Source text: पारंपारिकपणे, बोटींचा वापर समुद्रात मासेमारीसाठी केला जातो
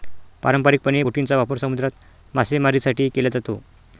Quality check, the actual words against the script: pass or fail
pass